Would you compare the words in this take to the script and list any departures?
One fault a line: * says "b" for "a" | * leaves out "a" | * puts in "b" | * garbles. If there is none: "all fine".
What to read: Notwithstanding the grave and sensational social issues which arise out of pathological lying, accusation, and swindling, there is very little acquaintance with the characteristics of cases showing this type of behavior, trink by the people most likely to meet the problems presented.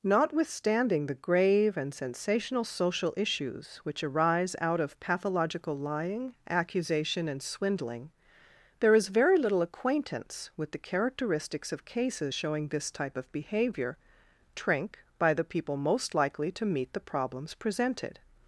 all fine